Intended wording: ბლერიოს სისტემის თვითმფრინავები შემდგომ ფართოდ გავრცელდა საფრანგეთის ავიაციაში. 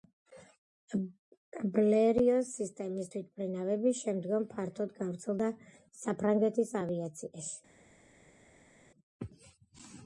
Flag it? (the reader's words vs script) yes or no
no